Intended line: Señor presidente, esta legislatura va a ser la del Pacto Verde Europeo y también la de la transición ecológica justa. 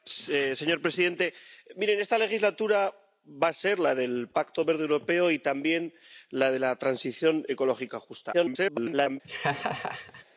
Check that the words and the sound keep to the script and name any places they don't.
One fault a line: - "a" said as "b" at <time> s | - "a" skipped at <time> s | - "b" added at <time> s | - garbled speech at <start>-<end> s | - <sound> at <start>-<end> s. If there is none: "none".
- garbled speech at 8.3-9.2 s
- laugh at 9.2-10.2 s